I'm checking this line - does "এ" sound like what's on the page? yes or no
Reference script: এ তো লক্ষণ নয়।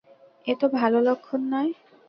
yes